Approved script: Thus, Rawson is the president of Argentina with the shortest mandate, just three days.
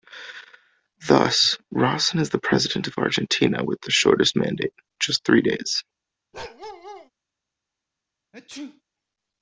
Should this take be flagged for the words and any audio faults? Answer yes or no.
yes